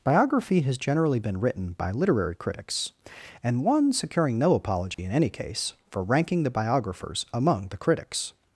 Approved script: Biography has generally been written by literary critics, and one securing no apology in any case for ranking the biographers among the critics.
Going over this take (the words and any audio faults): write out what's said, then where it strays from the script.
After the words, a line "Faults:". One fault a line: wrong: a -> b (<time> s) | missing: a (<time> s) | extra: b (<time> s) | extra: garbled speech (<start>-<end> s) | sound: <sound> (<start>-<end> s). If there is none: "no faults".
Biography has generally been written by literary critics, and one securing no apology in any case for ranking the biographers among the critics.
Faults:
sound: dropout (4.9-5.0 s)